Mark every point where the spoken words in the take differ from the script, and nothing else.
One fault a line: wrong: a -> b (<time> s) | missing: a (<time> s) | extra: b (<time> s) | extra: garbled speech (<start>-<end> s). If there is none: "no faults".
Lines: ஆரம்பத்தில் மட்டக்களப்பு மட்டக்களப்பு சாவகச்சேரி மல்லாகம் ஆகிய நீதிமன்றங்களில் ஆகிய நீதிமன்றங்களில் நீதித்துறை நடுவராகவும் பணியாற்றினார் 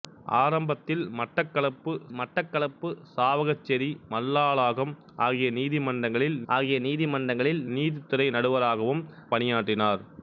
no faults